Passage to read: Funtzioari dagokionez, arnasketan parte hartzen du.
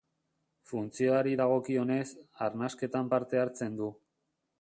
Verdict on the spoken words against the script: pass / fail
pass